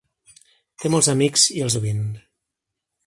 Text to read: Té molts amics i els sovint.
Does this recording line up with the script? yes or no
yes